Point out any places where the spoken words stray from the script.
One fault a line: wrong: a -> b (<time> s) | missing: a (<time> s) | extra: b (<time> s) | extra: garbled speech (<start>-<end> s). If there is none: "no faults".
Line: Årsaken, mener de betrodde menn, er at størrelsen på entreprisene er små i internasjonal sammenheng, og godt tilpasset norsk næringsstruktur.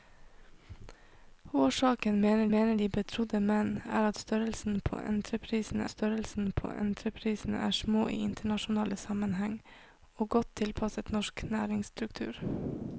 extra: mener (2.5 s)
extra: størrelsen på entreprisene (5.9 s)